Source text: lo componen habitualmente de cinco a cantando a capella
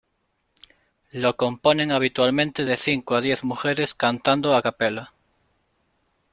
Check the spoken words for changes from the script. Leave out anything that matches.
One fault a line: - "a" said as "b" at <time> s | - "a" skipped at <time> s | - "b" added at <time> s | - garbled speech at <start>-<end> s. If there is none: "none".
- "diez mujeres" added at 3.2 s